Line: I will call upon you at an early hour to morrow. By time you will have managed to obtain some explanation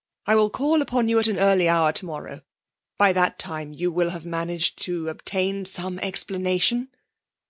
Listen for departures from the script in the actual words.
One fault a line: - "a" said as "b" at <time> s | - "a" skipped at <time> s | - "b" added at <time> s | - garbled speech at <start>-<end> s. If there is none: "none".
- "that" added at 3.1 s